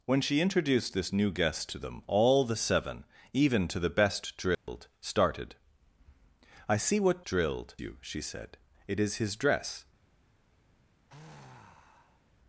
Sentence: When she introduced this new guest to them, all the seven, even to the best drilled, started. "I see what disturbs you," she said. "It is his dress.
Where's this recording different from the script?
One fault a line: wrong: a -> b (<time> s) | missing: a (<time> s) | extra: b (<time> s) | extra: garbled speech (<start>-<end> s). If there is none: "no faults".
wrong: disturbs -> drilled (7.2 s)